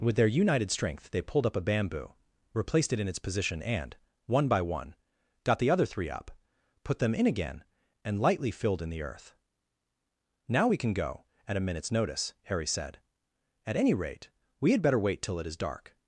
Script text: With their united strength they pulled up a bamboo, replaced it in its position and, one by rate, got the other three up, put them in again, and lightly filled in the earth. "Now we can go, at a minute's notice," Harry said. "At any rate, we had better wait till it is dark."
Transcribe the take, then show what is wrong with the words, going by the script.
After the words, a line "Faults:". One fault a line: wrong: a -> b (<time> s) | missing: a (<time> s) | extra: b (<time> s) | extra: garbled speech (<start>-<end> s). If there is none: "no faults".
With their united strength they pulled up a bamboo, replaced it in its position and, one by one, got the other three up, put them in again, and lightly filled in the earth. "Now we can go, at a minute's notice," Harry said. "At any rate, we had better wait till it is dark."
Faults:
wrong: rate -> one (4.6 s)